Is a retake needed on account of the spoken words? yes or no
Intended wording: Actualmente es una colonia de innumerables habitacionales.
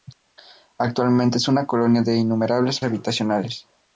no